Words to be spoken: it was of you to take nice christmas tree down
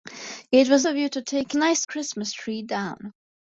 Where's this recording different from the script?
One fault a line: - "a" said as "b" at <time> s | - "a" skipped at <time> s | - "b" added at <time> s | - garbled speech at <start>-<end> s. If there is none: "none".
none